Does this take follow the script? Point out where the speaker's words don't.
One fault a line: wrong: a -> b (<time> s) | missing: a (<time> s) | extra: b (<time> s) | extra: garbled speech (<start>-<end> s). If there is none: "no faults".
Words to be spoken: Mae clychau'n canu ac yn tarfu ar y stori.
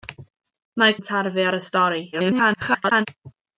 missing: clychau'n canu ac (0.9 s)
extra: garbled speech (2.1-3.1 s)